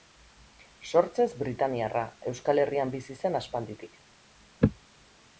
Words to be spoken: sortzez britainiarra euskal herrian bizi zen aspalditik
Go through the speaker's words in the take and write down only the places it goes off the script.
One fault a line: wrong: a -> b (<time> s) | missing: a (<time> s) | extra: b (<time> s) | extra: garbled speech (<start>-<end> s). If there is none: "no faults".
no faults